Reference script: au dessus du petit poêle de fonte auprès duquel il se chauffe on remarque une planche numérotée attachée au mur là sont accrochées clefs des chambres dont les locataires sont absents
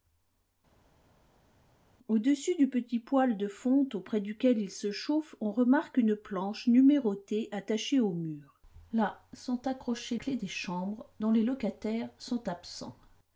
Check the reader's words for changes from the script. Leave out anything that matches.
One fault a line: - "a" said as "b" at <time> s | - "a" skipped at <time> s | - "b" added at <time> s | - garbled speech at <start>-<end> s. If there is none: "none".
none